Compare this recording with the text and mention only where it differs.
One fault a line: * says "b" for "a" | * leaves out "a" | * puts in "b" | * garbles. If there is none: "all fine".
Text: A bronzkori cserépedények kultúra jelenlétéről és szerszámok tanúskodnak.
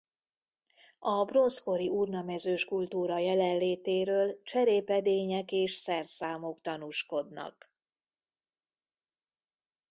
* says "urnamezős" for "cserépedények"
* puts in "cserépedények"